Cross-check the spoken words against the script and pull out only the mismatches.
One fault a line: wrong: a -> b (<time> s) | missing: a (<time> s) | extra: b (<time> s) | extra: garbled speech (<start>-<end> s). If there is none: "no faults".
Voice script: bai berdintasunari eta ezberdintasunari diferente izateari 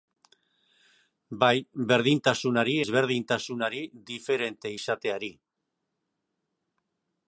missing: eta (2.7 s)